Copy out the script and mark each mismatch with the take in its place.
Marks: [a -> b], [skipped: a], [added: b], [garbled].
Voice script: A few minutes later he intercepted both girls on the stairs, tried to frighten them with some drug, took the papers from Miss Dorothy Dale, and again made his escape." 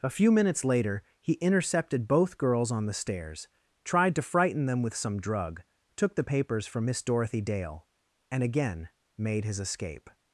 A few minutes later he intercepted both girls on the stairs, tried to frighten them with some drug, took the papers from Miss Dorothy Dale, and again made his escape."